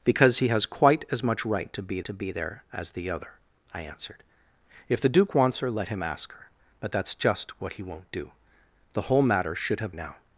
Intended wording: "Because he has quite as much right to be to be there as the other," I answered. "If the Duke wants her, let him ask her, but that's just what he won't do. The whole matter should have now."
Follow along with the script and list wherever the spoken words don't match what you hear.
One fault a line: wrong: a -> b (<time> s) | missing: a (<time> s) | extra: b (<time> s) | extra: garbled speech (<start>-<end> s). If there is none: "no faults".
no faults